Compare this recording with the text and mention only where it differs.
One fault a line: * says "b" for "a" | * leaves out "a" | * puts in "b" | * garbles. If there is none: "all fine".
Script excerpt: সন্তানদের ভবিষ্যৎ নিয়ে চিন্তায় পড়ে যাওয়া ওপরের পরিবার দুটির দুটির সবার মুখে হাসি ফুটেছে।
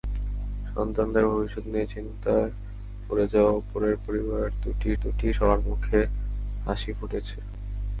all fine